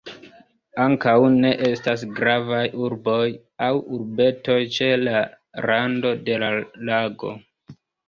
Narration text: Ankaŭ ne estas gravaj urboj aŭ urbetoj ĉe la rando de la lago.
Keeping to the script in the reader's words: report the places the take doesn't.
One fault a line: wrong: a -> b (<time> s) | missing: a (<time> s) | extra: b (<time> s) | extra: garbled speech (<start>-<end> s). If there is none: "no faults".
no faults